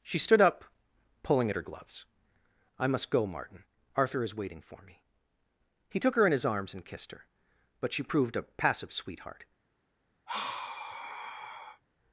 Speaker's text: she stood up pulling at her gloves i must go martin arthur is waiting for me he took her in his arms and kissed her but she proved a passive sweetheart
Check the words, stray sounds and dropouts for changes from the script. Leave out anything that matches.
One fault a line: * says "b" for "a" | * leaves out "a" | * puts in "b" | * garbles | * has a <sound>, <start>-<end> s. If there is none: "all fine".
* has a sigh, 10.3-11.8 s